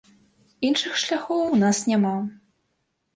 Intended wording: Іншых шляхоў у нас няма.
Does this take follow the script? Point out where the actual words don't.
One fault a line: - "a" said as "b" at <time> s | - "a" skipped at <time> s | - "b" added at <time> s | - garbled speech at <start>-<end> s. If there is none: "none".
none